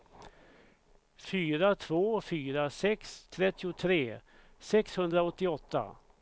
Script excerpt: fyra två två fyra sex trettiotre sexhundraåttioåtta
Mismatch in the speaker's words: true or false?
true